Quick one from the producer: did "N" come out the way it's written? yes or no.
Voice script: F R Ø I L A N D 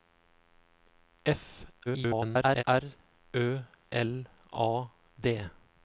no